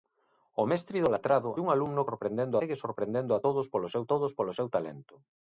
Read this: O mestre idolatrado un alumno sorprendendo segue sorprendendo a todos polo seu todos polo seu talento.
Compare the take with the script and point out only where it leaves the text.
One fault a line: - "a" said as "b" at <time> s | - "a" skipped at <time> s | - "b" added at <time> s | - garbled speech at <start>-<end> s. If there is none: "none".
none